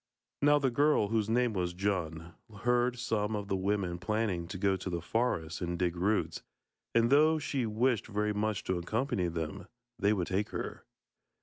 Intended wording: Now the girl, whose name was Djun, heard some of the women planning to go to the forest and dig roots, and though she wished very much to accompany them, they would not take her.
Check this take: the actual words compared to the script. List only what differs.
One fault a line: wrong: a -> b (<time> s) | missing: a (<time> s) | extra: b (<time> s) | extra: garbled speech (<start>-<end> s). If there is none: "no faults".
missing: not (10.3 s)